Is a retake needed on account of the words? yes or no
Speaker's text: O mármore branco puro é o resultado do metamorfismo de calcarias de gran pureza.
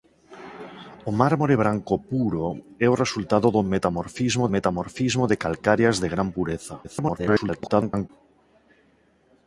yes